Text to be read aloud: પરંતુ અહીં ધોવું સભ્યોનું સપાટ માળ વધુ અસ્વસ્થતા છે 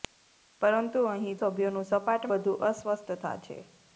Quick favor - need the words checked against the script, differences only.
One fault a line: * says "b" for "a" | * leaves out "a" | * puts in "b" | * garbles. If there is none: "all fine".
* leaves out "ધોવું"
* leaves out "માળ"